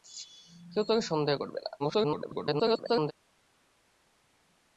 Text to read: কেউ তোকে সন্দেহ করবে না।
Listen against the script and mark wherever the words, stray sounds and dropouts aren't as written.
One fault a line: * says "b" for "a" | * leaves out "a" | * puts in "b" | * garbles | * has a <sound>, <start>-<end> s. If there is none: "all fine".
* garbles